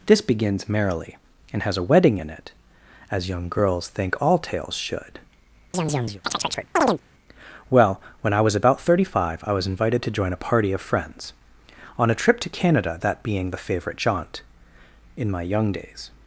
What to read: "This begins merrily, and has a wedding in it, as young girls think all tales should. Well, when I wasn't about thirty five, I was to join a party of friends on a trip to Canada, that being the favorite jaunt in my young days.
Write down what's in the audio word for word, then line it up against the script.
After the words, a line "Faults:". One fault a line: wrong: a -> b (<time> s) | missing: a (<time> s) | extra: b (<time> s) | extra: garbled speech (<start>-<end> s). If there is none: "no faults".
"This begins merrily, and has a wedding in it, as young girls think all tales should. Well, when I was about thirty five, I was invited to join a party of friends on a trip to Canada, that being the favorite jaunt in my young days.
Faults:
wrong: wasn't -> was (8.4 s)
extra: invited (9.7 s)